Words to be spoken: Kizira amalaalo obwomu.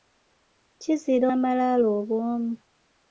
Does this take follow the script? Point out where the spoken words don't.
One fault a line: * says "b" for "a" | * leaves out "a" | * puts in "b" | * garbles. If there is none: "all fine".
all fine